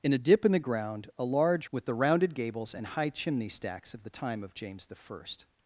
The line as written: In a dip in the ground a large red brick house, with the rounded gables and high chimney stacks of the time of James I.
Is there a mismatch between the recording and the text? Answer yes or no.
yes